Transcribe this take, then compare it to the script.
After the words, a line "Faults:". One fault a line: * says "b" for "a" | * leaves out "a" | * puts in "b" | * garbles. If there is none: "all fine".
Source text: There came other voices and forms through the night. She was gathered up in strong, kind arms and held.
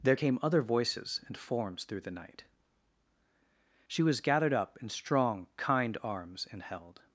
There came other voices and forms through the night. She was gathered up in strong, kind arms and held.
Faults:
all fine